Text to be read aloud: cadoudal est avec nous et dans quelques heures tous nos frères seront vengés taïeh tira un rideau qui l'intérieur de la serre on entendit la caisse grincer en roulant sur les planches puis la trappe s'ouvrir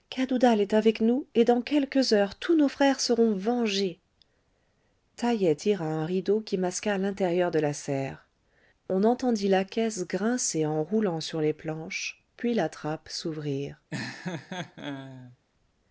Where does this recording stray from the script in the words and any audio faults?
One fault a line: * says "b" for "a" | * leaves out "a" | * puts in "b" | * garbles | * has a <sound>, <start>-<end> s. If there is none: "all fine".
* puts in "masqua"
* has a laugh, 13.9-15.4 s